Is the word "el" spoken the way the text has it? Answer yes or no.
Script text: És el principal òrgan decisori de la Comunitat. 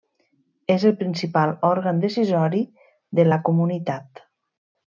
yes